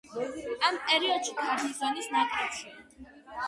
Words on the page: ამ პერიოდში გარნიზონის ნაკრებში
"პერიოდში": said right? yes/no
yes